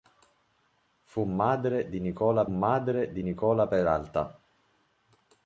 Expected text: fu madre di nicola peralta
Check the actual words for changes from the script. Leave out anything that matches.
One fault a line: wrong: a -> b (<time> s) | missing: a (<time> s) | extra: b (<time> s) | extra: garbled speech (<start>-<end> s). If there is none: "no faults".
extra: madre di nicola (2.5 s)